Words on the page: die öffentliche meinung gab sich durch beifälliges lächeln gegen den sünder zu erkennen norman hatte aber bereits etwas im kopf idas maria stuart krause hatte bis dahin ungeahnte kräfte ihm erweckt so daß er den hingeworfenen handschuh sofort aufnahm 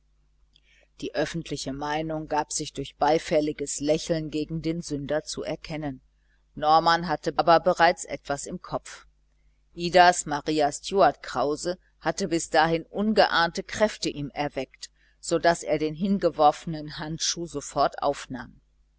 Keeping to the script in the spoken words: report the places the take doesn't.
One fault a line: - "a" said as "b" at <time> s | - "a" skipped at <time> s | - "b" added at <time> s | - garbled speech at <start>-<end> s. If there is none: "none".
none